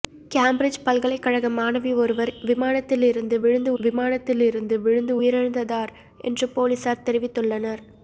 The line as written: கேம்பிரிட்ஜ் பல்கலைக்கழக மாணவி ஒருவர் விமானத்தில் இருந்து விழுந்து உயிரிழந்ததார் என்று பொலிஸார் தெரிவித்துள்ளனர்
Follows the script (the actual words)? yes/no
no